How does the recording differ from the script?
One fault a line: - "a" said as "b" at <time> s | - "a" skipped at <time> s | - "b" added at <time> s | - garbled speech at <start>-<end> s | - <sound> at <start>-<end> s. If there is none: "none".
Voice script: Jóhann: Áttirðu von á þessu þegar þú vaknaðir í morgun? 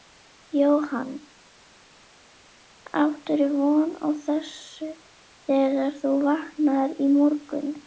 none